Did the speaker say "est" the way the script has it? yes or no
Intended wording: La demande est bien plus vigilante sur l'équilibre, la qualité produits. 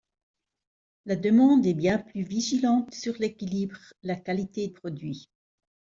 yes